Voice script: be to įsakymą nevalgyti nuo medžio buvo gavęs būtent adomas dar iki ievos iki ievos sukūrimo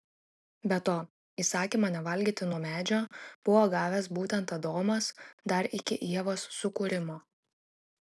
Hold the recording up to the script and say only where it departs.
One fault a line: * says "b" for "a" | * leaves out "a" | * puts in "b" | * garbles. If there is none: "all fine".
* leaves out "iki ievos"